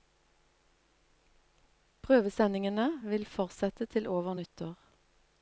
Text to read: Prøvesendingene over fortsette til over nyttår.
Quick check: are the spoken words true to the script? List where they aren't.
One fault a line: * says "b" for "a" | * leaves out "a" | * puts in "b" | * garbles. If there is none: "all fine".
* says "vil" for "over"